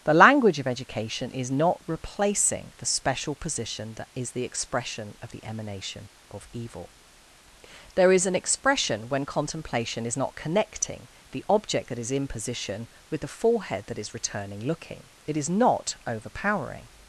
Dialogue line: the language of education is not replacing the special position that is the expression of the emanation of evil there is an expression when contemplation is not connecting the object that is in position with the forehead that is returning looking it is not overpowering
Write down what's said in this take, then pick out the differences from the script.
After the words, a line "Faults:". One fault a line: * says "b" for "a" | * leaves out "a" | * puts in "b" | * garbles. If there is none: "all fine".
the language of education is not replacing the special position that is the expression of the emanation of evil there is an expression when contemplation is not connecting the object that is in position with the forehead that is returning looking it is not overpowering
Faults:
all fine